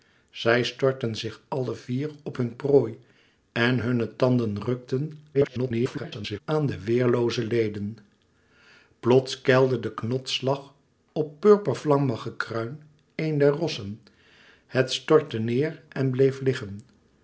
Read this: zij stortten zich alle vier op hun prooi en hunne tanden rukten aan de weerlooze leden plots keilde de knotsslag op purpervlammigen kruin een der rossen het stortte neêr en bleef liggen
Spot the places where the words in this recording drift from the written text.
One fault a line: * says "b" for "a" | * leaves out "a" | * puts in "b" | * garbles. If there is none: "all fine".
* garbles